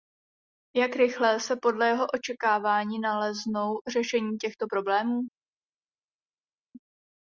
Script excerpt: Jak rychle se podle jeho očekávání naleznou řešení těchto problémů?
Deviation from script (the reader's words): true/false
false